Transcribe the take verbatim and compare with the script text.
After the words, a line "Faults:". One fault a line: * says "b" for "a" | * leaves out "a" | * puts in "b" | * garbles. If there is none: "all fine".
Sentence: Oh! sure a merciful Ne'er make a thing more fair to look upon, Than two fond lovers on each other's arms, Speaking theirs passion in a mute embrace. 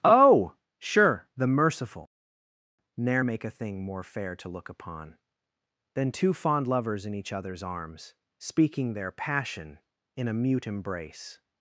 Oh! sure the merciful Ne'er make a thing more fair to look upon, Than two fond lovers in each other's arms, Speaking their passion in a mute embrace.
Faults:
* says "the" for "a"
* says "in" for "on"
* says "their" for "theirs"